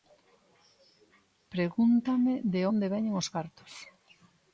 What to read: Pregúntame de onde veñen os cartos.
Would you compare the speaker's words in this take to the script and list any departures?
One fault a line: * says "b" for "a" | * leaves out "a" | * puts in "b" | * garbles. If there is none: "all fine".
all fine